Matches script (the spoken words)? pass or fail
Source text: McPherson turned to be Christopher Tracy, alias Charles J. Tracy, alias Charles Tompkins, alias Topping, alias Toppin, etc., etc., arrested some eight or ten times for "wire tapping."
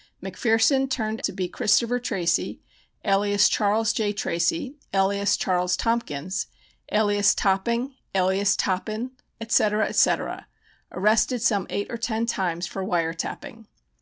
pass